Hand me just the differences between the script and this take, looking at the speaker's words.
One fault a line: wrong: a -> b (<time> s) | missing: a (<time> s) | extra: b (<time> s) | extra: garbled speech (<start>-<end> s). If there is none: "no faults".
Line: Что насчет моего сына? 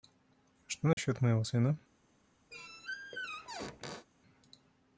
no faults